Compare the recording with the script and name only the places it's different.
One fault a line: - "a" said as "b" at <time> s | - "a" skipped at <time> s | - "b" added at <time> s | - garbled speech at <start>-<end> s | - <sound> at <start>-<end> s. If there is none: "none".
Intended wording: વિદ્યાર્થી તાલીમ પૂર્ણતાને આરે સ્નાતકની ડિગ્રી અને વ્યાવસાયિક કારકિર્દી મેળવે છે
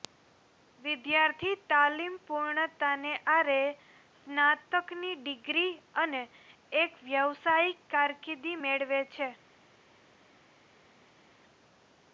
- "એક" added at 6.8 s